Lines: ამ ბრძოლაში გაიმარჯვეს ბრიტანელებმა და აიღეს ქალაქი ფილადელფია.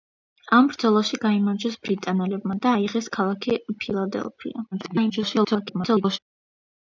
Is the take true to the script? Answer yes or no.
no